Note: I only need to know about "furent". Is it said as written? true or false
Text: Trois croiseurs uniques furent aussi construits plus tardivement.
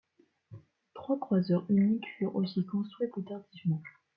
true